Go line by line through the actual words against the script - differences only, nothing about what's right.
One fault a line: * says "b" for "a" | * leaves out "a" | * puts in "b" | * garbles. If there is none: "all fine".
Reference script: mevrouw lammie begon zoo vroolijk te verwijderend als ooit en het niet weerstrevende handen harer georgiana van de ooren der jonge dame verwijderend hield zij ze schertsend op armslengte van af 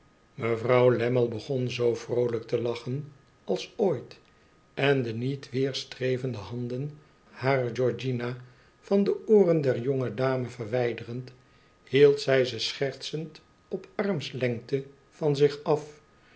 * says "lachen" for "verwijderend"
* says "de" for "het"
* puts in "zich"